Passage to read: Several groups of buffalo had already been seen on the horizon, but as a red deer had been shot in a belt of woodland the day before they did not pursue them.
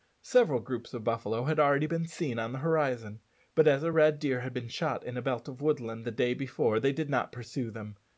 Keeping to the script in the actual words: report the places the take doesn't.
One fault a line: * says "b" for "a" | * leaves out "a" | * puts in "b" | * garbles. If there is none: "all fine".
all fine